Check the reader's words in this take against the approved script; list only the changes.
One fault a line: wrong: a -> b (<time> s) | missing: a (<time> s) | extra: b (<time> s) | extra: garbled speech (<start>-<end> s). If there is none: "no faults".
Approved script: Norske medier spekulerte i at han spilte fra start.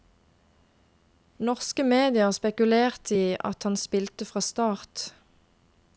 no faults